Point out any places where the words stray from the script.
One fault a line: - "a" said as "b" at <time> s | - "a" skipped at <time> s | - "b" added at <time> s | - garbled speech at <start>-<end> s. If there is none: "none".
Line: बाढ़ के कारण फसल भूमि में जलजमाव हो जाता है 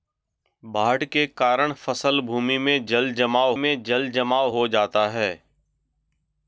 - "में जलजमाव" added at 3.5 s